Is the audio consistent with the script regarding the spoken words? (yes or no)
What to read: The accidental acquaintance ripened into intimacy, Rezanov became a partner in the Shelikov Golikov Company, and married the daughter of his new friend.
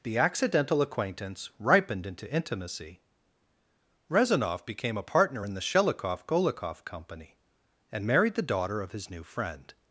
yes